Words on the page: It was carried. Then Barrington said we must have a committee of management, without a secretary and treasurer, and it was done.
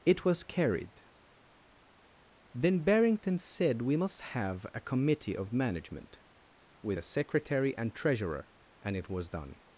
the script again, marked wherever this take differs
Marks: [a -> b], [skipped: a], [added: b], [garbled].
It was carried. Then Barrington said we must have a committee of management, [without -> with] a secretary and treasurer, and it was done.